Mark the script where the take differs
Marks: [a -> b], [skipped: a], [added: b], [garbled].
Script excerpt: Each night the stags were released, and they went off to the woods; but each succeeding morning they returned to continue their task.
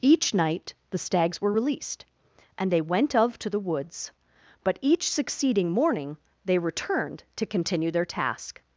Each night the stags were released, and they went [off -> of] to the woods; but each succeeding morning they returned to continue their task.